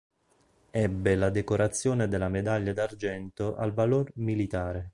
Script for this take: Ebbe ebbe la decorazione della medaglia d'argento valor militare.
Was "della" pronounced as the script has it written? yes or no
yes